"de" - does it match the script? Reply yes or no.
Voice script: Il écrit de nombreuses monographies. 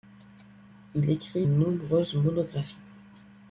no